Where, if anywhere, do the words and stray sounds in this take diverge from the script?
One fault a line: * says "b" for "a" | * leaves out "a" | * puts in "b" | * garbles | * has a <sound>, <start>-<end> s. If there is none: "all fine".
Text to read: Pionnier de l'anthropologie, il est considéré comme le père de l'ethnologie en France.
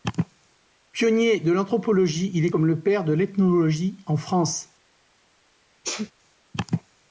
* leaves out "considéré"
* has a sneeze, 5.8-6.1 s